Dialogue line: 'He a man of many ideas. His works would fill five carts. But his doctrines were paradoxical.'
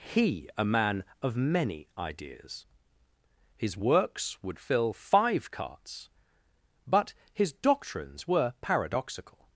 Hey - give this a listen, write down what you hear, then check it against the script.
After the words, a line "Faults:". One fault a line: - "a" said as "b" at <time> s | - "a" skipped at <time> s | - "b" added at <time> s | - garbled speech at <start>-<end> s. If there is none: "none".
'He a man of many ideas. His works would fill five carts. But his doctrines were paradoxical.'
Faults:
none